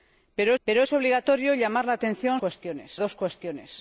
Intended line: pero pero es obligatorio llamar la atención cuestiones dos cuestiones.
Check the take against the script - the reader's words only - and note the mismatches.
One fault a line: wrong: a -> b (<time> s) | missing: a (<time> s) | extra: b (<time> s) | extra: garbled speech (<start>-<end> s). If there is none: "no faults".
no faults